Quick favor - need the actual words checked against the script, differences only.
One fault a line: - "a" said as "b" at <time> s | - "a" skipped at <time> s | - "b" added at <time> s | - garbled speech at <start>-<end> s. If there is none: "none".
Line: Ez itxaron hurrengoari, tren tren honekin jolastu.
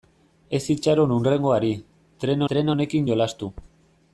none